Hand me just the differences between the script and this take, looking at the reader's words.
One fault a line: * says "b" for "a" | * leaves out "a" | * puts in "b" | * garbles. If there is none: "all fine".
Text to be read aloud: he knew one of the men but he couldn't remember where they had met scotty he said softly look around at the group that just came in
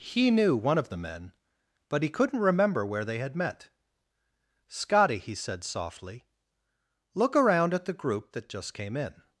all fine